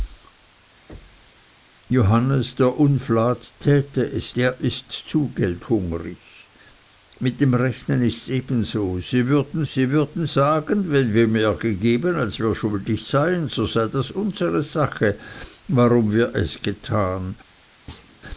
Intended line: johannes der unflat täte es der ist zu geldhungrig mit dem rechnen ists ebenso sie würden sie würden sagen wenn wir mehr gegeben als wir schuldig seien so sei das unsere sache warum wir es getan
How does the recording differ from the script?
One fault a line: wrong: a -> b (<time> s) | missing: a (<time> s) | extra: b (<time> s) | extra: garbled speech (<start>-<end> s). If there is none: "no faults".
no faults